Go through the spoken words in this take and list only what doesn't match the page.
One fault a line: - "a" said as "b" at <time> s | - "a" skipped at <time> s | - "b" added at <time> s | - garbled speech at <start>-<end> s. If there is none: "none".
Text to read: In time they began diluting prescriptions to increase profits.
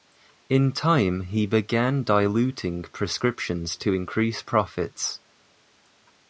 - "they" said as "he" at 1.2 s